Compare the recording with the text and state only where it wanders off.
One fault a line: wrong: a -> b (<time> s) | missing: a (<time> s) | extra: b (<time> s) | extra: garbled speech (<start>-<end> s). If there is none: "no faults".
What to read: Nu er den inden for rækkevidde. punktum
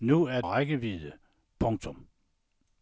missing: den inden for (0.4 s)